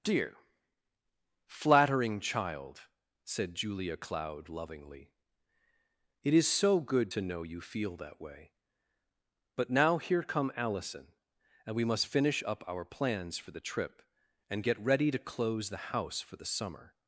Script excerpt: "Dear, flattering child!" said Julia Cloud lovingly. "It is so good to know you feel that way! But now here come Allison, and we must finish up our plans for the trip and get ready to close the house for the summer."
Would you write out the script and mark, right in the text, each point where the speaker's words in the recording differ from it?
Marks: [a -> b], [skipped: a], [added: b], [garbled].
"Dear, flattering child!" said Julia Cloud lovingly. "It is so good to know you feel that way! But now here come Allison, and we must finish up our plans for the trip and get ready to close the house for the summer."